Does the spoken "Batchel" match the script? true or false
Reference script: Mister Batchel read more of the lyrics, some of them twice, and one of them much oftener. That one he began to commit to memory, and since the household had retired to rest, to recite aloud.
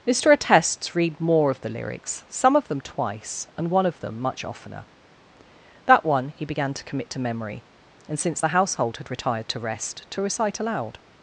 false